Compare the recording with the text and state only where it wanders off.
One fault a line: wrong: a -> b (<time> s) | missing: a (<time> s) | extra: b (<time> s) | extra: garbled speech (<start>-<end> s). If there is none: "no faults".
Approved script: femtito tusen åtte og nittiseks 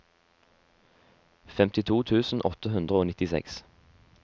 extra: hundre (2.8 s)